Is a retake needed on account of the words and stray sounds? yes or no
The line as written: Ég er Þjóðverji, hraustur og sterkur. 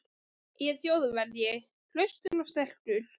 yes